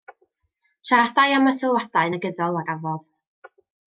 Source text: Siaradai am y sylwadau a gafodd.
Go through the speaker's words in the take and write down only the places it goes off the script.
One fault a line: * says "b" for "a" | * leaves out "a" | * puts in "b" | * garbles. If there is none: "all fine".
* puts in "negyddol"